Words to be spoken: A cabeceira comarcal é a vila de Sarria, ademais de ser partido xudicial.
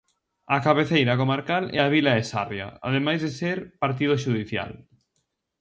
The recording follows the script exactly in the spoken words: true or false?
true